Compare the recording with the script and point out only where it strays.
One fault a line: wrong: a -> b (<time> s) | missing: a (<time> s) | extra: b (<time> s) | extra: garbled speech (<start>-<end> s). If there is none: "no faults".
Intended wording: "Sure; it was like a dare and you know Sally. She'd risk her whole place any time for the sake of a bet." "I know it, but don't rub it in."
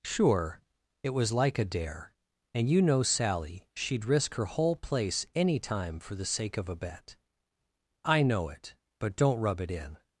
no faults